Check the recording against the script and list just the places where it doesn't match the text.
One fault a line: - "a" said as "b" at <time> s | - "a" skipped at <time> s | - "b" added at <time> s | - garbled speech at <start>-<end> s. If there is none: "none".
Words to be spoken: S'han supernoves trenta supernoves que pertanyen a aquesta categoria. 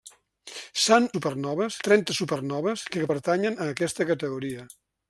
none